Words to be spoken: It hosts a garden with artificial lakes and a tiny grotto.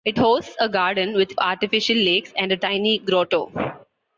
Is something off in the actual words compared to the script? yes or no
no